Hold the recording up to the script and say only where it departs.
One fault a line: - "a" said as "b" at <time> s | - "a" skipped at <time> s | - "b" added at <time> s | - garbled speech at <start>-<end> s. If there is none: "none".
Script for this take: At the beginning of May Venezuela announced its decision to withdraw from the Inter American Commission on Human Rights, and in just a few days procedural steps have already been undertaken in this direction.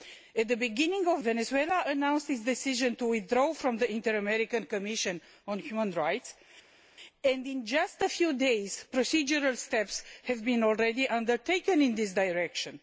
- "May" skipped at 1.2 s